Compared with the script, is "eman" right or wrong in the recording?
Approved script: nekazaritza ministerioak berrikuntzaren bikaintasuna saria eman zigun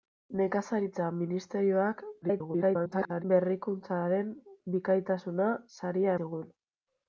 wrong